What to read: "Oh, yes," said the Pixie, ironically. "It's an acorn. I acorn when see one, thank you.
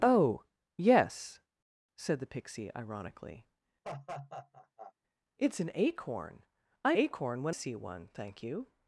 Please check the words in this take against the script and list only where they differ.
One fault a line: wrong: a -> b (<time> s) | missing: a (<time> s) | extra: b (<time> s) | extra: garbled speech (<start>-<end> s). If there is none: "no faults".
no faults